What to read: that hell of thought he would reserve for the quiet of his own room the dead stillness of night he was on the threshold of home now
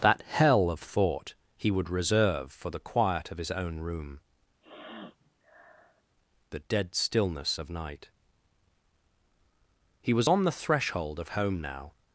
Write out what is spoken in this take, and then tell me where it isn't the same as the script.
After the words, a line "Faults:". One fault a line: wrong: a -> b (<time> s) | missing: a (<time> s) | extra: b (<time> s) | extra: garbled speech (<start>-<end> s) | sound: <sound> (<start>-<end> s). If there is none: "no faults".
that hell of thought he would reserve for the quiet of his own room the dead stillness of night he was on the threshold of home now
Faults:
sound: sniff (4.6-6.0 s)